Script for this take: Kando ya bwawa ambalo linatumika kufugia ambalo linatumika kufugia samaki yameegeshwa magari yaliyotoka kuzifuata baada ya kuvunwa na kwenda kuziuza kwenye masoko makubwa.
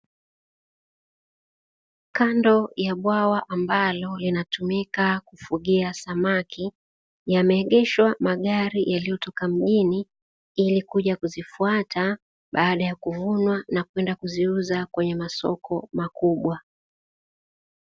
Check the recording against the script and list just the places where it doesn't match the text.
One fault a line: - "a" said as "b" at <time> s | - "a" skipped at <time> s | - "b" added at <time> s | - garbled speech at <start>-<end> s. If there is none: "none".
- "ambalo linatumika kufugia" skipped at 5.9 s
- "mjini ili kuja" added at 9.5 s